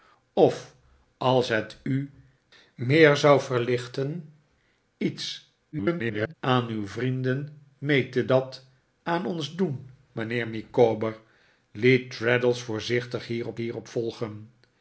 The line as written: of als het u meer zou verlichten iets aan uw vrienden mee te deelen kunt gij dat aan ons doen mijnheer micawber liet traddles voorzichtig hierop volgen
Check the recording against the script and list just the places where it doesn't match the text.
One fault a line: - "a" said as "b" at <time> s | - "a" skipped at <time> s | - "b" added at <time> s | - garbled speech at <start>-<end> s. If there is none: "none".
- garbled speech at 5.7-6.3 s
- "deelen kunt gij" skipped at 8.3 s
- "hierop" added at 13.6 s